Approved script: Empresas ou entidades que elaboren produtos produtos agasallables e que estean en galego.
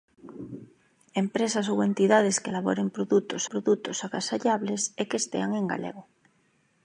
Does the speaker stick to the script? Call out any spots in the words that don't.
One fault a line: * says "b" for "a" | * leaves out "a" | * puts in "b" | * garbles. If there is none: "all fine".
all fine